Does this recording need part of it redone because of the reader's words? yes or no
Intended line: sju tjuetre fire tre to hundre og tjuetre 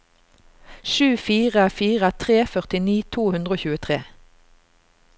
yes